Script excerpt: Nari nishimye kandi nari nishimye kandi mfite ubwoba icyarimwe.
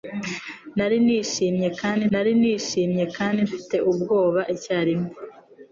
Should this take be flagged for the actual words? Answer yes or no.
no